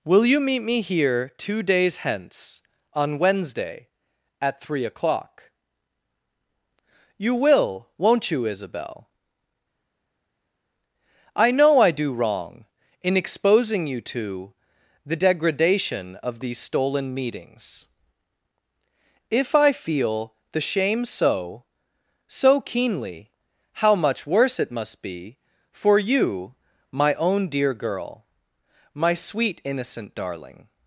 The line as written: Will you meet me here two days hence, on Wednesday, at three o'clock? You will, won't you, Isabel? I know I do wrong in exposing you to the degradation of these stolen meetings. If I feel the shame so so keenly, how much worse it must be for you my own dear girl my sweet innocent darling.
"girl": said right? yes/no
yes